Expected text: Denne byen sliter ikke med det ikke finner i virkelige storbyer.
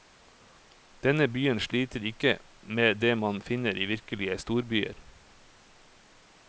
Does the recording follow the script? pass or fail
fail